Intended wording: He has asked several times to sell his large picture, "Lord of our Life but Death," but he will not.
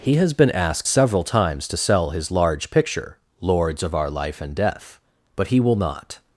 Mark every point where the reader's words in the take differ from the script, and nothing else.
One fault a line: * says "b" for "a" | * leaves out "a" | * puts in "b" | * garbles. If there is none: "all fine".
* puts in "been"
* says "Lords" for "Lord"
* says "and" for "but"